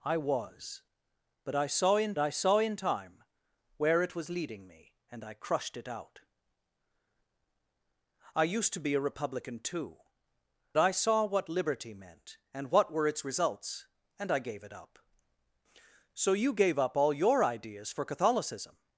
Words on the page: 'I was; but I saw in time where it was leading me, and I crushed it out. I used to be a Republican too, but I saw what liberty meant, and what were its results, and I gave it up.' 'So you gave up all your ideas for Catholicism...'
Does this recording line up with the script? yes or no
no